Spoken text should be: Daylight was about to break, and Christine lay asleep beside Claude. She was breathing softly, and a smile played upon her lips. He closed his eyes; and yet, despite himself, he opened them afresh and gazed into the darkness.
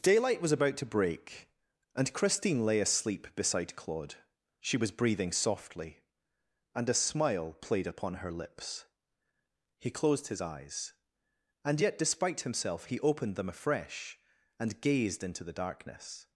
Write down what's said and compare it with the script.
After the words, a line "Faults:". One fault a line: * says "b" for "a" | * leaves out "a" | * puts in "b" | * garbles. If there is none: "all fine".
Daylight was about to break, and Christine lay asleep beside Claude. She was breathing softly, and a smile played upon her lips. He closed his eyes; and yet, despite himself, he opened them afresh and gazed into the darkness.
Faults:
all fine